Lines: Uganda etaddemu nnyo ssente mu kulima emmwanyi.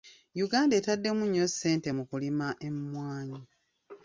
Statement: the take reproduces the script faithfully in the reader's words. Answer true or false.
true